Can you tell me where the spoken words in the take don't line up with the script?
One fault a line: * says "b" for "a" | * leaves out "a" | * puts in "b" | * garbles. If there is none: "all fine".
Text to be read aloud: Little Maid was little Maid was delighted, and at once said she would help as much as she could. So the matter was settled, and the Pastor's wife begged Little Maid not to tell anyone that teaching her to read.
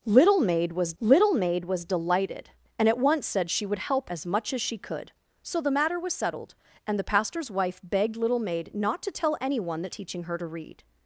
all fine